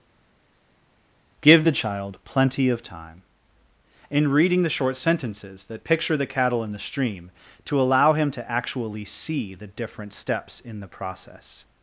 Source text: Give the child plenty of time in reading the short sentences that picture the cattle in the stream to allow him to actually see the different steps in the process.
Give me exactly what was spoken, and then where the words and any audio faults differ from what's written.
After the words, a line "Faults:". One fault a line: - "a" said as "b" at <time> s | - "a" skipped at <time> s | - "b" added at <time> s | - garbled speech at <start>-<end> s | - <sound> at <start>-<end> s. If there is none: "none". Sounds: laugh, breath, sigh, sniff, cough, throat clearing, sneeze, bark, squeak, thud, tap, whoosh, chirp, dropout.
Give the child plenty of time in reading the short sentences that picture the cattle in the stream to allow him to actually see the different steps in the process.
Faults:
none